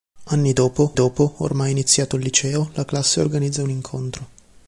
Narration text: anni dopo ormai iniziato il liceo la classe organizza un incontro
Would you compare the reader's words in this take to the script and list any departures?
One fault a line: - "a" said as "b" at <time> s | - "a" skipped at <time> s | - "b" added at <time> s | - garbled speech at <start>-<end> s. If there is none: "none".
- "dopo" added at 0.9 s